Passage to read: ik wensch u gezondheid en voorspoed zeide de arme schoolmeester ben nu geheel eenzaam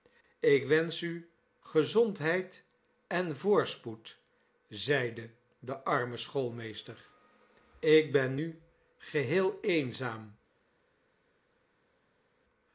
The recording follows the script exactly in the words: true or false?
false